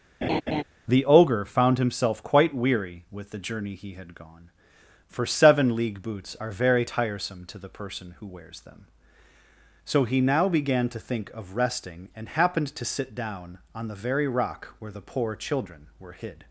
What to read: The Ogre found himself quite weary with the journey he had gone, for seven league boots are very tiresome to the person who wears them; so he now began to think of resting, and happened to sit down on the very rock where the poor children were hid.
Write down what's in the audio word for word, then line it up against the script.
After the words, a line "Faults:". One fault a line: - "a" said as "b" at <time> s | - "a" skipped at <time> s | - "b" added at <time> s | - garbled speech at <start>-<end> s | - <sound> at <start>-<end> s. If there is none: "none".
The Ogre found himself quite weary with the journey he had gone, for seven league boots are very tiresome to the person who wears them; so he now began to think of resting, and happened to sit down on the very rock where the poor children were hid.
Faults:
- laugh at 0.2-0.6 s